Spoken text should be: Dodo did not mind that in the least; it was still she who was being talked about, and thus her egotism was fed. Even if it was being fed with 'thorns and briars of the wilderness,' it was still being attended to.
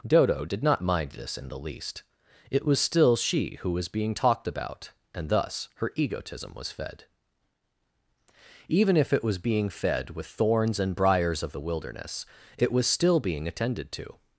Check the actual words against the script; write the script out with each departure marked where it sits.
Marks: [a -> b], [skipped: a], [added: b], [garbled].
Dodo did not mind [that -> this] in the least; it was still she who was being talked about, and thus her egotism was fed. Even if it was being fed with 'thorns and briars of the wilderness,' it was still being attended to.